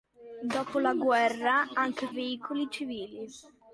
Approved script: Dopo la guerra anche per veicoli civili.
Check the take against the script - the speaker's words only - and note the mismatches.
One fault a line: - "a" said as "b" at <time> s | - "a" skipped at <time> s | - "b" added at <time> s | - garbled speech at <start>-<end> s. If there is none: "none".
- "per" skipped at 2.1 s